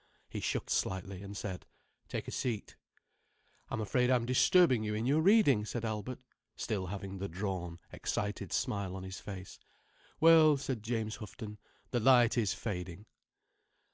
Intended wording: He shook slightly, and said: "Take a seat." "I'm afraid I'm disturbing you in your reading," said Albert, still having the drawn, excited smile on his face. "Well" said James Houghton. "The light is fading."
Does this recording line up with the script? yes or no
yes